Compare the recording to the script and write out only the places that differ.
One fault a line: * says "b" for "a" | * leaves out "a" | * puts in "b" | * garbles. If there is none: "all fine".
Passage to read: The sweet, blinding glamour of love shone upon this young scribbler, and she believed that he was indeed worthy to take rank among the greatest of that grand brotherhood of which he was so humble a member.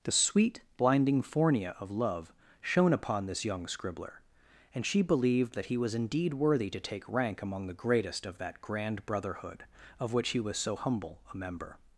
* says "fornia" for "glamour"